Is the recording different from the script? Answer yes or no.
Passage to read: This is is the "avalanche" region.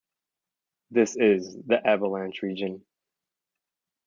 yes